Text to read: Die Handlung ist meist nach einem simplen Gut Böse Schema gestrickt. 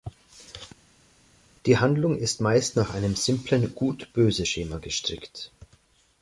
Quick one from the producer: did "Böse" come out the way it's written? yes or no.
yes